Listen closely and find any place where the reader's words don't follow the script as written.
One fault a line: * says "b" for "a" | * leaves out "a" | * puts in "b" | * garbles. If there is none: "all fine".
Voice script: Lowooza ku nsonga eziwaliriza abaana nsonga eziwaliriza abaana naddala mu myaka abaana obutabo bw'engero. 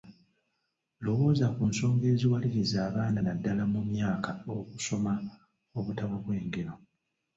* leaves out "nsonga eziwaliriza abaana"
* says "okusoma" for "abaana"